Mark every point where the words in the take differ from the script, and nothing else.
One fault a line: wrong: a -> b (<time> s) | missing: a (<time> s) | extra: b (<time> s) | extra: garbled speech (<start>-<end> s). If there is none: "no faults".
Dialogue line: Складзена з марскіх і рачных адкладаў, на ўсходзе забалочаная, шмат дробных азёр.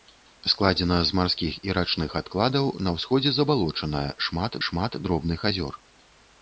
extra: шмат (4.7 s)